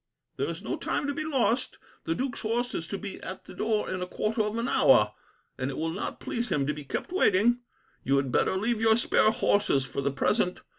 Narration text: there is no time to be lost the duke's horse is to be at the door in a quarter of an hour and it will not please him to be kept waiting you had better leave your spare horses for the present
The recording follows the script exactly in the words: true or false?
true